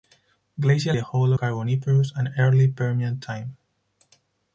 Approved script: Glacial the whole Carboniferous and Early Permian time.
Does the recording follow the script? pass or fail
pass